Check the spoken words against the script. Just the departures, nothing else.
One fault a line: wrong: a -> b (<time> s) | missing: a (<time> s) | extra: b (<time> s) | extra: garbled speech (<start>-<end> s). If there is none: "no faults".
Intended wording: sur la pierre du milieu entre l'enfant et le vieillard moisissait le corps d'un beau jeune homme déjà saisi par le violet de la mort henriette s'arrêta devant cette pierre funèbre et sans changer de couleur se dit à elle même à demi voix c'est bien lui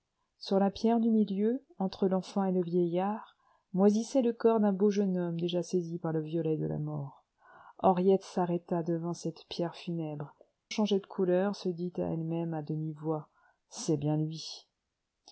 missing: et sans (10.3 s)